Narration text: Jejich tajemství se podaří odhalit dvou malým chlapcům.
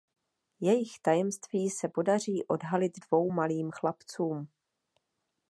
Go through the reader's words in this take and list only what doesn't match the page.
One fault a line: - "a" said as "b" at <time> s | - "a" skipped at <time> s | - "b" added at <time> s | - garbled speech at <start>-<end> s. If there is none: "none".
none